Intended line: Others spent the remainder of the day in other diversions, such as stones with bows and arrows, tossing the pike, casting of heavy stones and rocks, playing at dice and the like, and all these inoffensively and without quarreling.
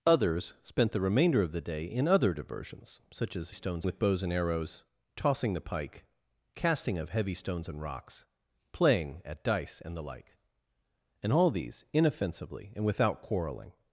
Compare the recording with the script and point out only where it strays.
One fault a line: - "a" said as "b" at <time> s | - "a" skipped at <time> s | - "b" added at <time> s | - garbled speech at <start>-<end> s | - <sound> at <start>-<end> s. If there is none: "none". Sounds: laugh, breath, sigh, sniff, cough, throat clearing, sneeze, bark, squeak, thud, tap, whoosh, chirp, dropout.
none